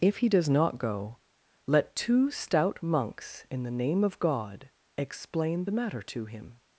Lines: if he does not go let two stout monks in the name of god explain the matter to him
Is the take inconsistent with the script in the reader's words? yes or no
no